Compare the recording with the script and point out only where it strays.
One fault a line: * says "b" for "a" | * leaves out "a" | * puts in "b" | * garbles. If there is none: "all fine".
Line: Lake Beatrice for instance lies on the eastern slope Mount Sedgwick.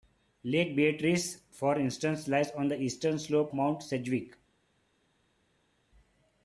all fine